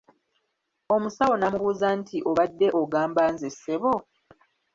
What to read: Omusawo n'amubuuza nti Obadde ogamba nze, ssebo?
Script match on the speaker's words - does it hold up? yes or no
yes